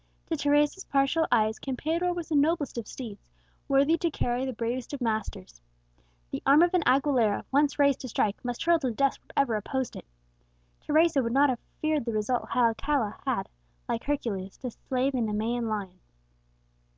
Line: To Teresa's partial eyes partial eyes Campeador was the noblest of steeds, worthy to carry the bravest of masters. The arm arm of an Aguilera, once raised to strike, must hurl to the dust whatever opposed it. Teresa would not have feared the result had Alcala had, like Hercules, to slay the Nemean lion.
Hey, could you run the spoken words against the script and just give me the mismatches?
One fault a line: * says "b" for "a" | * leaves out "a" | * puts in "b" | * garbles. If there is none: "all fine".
* leaves out "partial eyes"
* leaves out "arm"